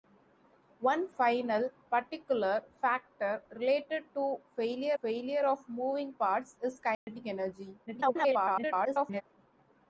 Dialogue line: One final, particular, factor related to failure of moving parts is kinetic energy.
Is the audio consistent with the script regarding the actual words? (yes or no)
no